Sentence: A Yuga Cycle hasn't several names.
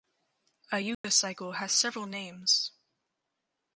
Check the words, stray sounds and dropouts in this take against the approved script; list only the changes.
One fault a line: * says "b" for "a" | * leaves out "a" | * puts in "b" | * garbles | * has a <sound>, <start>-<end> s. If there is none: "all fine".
* has a dropout, 0.9-1.0 s
* says "has" for "hasn't"